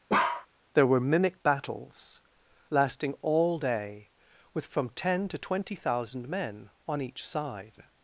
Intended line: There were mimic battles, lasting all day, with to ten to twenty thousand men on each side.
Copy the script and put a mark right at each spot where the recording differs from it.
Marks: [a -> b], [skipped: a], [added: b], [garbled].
There were mimic battles, lasting all day, with [to -> from] ten to twenty thousand men on each side.